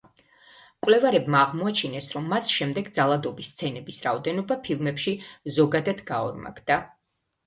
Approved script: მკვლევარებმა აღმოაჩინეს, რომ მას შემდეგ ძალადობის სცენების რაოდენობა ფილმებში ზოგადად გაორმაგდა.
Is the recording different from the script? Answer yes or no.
no